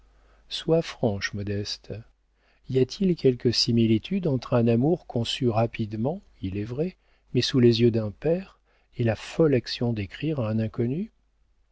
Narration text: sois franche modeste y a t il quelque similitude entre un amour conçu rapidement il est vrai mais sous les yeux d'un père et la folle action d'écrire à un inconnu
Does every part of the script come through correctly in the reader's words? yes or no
yes